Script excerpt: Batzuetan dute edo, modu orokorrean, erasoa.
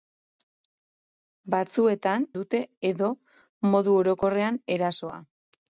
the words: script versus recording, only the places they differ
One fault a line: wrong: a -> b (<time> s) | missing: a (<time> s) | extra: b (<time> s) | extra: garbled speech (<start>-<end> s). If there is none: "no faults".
no faults